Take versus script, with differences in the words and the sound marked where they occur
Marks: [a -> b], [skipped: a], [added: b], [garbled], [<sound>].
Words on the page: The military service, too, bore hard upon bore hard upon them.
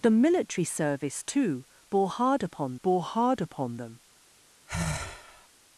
The military service, too, bore hard upon bore hard upon them. [sigh]